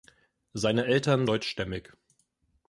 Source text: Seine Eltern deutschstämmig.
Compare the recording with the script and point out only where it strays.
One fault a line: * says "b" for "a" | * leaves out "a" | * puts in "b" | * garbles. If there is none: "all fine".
all fine